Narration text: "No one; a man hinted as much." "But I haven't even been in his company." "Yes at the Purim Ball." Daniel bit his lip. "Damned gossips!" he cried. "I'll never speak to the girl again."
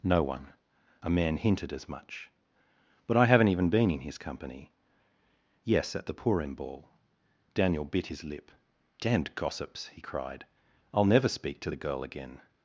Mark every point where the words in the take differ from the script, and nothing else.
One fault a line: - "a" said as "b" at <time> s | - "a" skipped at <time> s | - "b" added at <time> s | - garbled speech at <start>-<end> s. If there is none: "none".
none